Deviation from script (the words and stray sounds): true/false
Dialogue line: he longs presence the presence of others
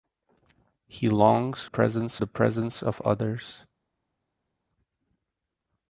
false